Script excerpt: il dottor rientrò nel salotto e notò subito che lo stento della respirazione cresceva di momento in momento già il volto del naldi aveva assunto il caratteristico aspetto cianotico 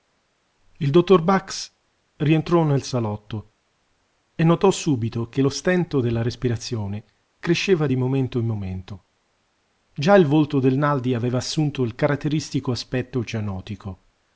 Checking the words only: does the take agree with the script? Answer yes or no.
no